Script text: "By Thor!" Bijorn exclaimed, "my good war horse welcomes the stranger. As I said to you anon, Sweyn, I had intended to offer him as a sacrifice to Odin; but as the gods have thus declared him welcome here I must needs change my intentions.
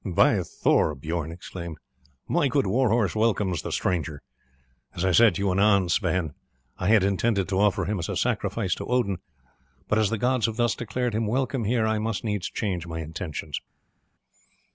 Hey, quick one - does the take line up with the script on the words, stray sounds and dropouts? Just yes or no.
yes